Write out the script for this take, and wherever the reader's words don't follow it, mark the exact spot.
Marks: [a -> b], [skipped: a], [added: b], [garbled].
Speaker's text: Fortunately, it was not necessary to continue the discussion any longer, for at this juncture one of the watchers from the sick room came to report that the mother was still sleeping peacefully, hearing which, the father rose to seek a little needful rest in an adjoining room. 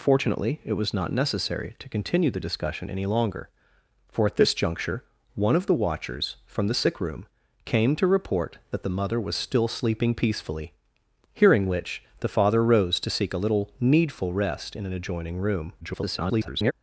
Fortunately, it was not necessary to continue the discussion any longer, for at this juncture one of the watchers from the sick room came to report that the mother was still sleeping peacefully, hearing which, the father rose to seek a little needful rest in an adjoining room. [garbled]